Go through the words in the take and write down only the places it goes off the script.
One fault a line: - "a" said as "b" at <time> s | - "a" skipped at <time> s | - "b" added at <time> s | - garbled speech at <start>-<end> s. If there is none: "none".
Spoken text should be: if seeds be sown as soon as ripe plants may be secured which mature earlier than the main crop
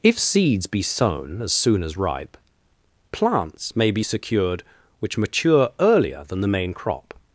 none